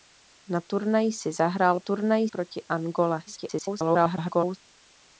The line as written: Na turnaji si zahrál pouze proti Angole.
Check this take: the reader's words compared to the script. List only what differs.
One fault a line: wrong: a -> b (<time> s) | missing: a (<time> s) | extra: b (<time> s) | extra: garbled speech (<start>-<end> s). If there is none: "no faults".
wrong: pouze -> turnaji (1.8 s)
extra: garbled speech (3.3-4.6 s)